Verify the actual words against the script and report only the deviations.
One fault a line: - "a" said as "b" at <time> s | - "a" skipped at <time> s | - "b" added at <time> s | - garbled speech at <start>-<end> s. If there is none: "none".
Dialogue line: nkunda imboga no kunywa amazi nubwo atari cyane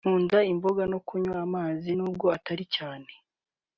none